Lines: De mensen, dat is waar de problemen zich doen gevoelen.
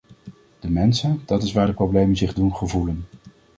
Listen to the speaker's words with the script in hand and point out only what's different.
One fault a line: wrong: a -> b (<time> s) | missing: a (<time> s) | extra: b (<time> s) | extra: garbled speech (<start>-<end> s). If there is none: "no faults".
no faults